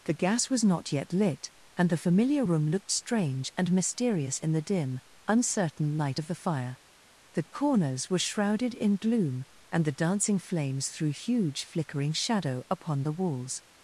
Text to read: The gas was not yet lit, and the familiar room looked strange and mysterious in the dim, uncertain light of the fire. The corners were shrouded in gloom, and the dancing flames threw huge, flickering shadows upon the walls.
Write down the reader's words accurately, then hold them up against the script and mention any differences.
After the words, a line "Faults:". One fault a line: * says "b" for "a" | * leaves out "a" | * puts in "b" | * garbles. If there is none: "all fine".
The gas was not yet lit, and the familiar room looked strange and mysterious in the dim, uncertain light of the fire. The corners were shrouded in gloom, and the dancing flames threw huge, flickering shadow upon the walls.
Faults:
* says "shadow" for "shadows"